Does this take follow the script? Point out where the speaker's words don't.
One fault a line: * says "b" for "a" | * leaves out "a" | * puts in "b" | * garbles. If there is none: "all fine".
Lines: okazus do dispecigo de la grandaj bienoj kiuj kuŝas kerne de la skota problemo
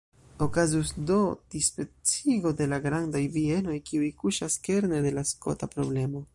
all fine